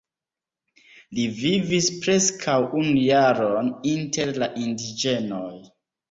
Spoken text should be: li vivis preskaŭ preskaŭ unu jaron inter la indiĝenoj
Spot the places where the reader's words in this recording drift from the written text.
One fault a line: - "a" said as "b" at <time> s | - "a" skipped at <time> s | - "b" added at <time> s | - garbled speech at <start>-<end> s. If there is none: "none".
- "preskaŭ" skipped at 2.5 s